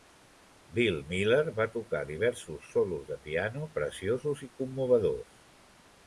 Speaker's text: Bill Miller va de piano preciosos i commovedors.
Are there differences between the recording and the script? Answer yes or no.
yes